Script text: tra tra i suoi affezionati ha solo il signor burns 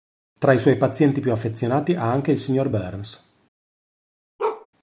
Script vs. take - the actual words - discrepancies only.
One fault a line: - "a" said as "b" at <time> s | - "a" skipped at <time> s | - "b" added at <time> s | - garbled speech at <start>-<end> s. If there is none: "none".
- "tra" skipped at 0.5 s
- "pazienti più" added at 0.8 s
- "solo" said as "anche" at 2.1 s